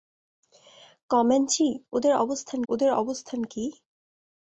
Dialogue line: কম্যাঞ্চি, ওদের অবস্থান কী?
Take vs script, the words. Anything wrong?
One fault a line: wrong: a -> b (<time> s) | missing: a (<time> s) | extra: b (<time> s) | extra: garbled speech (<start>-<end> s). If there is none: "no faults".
extra: ওদের অবস্থান (2.7 s)